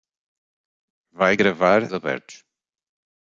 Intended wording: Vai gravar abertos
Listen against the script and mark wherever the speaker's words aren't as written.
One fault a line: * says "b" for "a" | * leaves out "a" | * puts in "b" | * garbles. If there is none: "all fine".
all fine